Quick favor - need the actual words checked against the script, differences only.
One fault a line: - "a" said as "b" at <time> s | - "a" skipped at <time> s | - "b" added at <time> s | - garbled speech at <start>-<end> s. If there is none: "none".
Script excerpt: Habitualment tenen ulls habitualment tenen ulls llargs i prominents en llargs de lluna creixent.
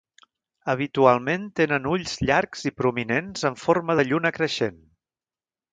- "habitualment tenen ulls" skipped at 2.1 s
- "llargs" said as "forma" at 3.7 s